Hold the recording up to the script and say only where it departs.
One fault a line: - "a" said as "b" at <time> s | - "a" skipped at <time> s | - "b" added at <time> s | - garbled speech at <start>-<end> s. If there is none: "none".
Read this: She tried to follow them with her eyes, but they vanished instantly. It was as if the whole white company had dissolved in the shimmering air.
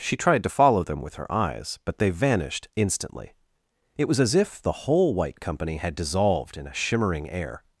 - "the" said as "a" at 6.7 s